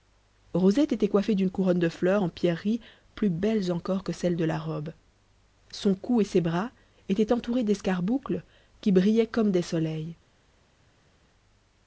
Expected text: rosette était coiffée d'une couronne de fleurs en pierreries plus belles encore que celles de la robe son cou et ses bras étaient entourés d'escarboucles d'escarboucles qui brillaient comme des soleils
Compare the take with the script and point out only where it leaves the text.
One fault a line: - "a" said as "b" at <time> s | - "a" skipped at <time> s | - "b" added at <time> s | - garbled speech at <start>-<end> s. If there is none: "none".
- "d'escarboucles" skipped at 8.4 s